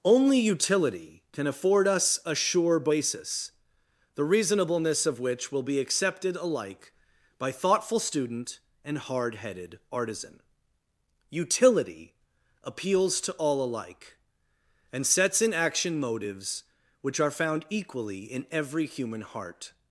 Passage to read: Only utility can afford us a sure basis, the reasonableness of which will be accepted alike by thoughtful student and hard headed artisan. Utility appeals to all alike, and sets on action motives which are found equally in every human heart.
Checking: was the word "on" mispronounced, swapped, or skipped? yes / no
yes